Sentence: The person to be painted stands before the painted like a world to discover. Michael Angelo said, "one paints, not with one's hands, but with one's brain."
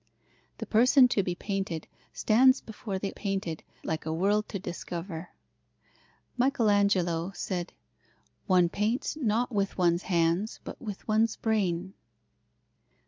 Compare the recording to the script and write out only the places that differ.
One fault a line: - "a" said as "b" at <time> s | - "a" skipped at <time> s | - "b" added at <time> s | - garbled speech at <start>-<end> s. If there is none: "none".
none